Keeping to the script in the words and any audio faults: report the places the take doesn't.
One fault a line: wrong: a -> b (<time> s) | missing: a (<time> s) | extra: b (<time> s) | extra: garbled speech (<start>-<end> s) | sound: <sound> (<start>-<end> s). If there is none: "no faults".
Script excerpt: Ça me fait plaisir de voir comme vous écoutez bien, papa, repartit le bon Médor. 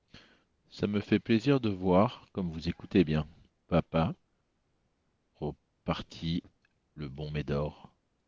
no faults